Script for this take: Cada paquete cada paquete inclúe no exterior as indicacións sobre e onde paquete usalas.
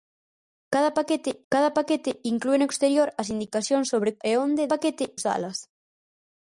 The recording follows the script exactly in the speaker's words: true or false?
true